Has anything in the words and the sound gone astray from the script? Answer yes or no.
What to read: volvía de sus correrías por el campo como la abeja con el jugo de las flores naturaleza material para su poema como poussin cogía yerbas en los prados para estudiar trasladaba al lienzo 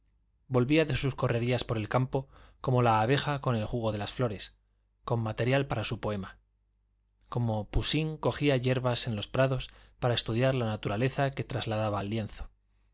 yes